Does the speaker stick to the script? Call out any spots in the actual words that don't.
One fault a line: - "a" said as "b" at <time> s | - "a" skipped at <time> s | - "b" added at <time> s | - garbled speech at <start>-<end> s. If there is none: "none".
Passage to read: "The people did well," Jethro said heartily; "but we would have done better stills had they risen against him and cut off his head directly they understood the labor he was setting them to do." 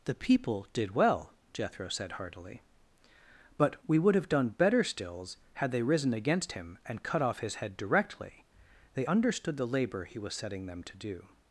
none